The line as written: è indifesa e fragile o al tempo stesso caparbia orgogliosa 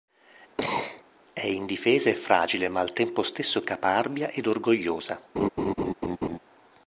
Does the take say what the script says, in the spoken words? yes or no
no